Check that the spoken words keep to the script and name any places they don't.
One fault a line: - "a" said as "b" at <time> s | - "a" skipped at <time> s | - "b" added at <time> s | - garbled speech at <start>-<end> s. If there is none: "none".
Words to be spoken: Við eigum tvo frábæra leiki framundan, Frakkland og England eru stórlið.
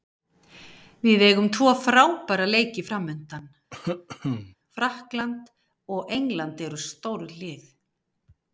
none